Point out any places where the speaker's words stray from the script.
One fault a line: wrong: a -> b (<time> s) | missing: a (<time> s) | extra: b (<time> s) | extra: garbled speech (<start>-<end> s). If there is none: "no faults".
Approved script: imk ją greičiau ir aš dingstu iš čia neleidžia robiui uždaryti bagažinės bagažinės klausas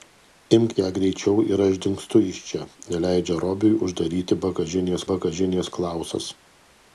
no faults